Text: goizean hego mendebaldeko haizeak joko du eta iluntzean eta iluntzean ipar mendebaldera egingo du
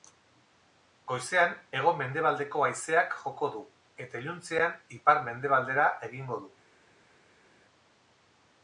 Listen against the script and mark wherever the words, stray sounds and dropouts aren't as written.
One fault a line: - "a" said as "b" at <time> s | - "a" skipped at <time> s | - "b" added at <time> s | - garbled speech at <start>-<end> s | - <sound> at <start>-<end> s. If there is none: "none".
- "eta iluntzean" skipped at 4.8 s